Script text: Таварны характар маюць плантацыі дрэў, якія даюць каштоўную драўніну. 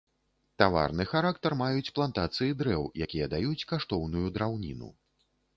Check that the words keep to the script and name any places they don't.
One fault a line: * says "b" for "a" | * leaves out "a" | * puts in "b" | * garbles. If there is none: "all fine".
all fine